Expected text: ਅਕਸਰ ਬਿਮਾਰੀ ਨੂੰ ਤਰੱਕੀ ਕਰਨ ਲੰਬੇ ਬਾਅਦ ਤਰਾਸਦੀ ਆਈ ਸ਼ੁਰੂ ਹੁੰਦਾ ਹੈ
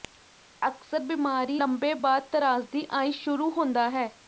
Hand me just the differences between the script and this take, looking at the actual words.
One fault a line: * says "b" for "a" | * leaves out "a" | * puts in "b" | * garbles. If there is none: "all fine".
* leaves out "ਨੂੰ ਤਰੱਕੀ ਕਰਨ"